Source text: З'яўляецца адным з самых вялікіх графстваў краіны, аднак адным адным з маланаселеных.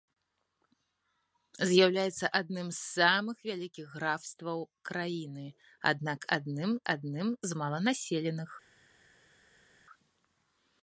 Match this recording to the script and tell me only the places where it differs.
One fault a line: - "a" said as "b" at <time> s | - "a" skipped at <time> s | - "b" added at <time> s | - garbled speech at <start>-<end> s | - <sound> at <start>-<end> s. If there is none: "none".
none